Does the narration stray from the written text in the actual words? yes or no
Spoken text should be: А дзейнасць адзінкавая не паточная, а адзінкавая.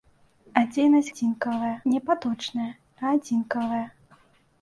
no